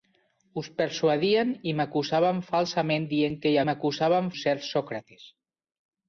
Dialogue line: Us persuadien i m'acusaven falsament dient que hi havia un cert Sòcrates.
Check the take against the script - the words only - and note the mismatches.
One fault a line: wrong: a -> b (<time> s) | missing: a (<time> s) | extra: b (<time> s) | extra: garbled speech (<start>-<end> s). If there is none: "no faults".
wrong: havia -> m'acusaven (3.7 s)